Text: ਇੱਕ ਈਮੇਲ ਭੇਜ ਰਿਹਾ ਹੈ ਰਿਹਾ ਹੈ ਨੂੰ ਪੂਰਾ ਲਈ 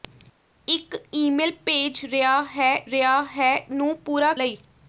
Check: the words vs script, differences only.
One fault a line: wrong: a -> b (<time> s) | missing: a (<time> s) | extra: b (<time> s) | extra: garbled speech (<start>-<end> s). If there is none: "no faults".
no faults